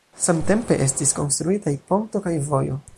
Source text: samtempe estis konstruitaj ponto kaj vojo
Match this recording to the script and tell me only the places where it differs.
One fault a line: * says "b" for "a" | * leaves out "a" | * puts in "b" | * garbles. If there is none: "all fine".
all fine